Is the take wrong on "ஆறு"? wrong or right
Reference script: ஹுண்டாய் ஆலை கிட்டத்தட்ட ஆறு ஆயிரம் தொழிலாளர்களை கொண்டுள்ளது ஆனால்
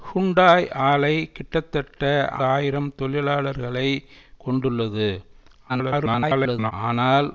wrong